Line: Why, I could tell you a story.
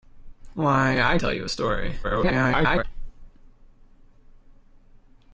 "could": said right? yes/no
no